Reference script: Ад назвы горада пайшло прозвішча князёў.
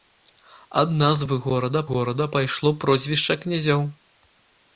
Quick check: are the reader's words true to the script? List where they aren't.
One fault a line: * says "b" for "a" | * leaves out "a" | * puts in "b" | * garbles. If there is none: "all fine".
* puts in "горада"